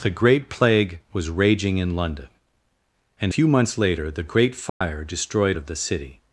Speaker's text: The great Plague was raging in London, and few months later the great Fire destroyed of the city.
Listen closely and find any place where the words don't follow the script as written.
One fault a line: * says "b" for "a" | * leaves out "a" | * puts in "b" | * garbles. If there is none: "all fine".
all fine